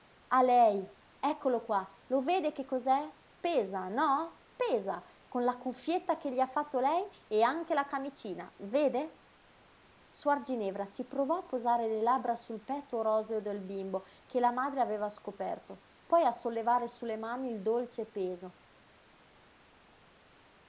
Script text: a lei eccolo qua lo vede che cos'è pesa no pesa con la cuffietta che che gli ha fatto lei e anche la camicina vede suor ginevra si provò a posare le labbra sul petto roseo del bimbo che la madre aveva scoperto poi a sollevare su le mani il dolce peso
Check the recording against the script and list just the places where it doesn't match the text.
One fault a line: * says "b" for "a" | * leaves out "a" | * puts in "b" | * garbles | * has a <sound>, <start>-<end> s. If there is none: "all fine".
* leaves out "che"